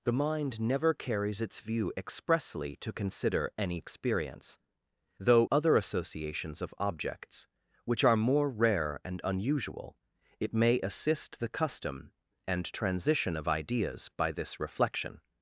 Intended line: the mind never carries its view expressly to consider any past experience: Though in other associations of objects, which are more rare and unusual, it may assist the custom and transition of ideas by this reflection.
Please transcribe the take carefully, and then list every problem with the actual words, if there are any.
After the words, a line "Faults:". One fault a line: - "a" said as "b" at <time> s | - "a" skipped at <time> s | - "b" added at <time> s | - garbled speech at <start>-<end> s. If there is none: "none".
the mind never carries its view expressly to consider any experience: Though other associations of objects, which are more rare and unusual, it may assist the custom and transition of ideas by this reflection.
Faults:
- "past" skipped at 3.8 s
- "in" skipped at 5.5 s